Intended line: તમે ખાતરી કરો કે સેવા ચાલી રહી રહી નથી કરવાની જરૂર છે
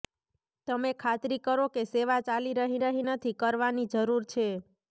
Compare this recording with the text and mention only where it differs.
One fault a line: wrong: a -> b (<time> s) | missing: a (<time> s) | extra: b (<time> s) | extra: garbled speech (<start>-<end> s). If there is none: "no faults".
no faults